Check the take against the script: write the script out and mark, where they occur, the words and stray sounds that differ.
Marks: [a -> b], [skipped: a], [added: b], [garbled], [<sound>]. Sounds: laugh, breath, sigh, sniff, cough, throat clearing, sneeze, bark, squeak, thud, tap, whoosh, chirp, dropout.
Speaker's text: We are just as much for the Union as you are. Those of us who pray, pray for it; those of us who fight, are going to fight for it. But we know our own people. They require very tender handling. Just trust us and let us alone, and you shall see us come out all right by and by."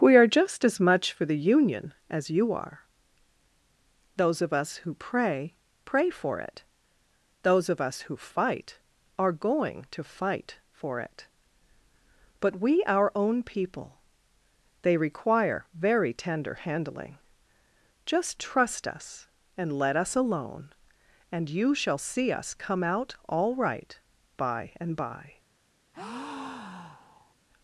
We are just as much for the Union as you are. Those of us who pray, pray for it; those of us who fight, are going to fight for it. But we [skipped: know] our own people. They require very tender handling. Just trust us and let us alone, and you shall see us come out all right by and by." [breath]